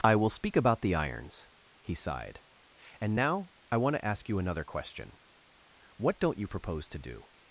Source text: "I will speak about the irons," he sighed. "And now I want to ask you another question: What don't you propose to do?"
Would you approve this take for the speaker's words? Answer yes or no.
yes